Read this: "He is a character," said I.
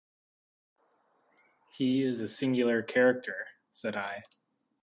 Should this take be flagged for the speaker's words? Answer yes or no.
yes